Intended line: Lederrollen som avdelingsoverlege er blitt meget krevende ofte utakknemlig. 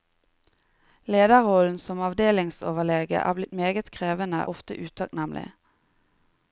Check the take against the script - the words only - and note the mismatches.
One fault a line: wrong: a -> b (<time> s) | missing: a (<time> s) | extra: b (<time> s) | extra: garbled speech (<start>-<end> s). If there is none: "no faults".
no faults